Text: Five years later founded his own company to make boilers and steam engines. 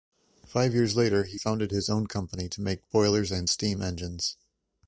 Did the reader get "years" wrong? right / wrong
right